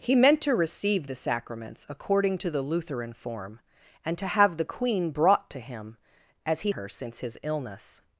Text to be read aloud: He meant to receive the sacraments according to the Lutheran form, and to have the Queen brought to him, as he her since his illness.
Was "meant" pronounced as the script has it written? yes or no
yes